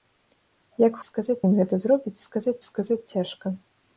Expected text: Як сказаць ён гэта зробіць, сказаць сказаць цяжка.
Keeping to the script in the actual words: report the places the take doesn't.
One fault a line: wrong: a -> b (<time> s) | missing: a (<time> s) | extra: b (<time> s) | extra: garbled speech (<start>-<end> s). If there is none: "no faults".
no faults